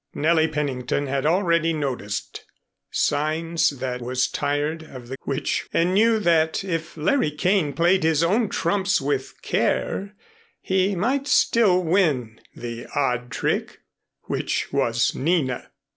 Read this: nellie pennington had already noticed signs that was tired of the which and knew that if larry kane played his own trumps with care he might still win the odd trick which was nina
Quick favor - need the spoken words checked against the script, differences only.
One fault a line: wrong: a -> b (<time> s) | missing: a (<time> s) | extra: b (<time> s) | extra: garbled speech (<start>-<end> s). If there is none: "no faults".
no faults